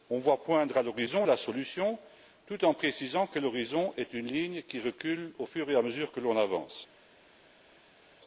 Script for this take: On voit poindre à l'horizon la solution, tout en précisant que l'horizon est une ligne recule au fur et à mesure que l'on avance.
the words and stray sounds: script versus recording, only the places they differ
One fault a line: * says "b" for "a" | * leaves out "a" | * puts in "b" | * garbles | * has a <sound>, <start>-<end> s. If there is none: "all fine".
* puts in "qui"